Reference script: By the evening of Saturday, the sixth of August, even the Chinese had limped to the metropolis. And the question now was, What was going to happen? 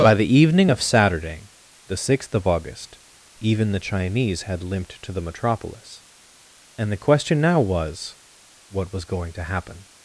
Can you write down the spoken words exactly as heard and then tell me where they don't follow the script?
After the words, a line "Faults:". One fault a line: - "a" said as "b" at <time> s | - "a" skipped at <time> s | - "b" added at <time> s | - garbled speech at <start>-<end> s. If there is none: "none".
By the evening of Saturday, the sixth of August, even the Chinese had limped to the metropolis. And the question now was, What was going to happen?
Faults:
none